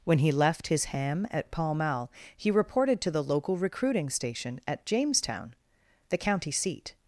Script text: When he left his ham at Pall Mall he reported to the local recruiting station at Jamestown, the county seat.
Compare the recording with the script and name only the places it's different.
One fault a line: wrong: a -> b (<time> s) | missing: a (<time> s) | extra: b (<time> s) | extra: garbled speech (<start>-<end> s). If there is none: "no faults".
no faults